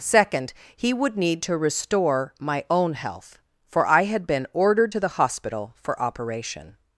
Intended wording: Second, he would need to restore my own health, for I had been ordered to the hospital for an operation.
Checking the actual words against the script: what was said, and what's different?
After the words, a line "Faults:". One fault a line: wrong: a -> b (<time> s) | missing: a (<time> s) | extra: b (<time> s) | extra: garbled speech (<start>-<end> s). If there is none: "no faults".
Second, he would need to restore my own health, for I had been ordered to the hospital for operation.
Faults:
missing: an (6.0 s)